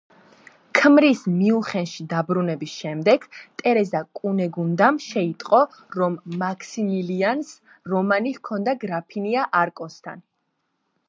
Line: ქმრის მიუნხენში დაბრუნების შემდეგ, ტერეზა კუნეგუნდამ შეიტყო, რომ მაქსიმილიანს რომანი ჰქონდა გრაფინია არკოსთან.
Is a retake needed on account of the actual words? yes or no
no